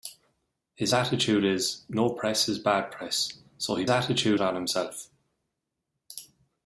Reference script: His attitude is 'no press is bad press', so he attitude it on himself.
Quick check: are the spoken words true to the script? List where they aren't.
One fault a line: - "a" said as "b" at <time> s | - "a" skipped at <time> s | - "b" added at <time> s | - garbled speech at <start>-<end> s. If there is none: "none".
none